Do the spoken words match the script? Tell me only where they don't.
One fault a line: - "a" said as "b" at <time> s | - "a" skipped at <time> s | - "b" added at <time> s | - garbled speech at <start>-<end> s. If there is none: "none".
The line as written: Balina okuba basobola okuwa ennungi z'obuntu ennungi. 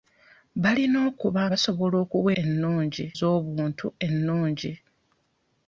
none